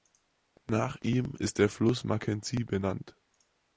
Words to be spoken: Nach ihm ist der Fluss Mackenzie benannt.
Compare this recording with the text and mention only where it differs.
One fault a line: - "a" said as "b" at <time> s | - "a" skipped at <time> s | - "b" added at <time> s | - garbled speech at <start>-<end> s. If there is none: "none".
none